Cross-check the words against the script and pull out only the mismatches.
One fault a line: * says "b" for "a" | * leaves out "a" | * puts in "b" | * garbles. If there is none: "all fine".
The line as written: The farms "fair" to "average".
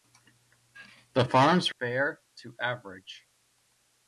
all fine